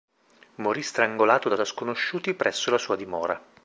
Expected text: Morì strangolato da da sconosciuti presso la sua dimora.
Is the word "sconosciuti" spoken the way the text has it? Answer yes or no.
yes